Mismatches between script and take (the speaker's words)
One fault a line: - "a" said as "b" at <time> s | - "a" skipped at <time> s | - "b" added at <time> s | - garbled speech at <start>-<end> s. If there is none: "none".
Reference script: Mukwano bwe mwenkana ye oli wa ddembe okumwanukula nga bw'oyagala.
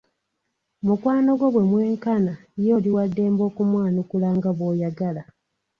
- "gwo" added at 1.4 s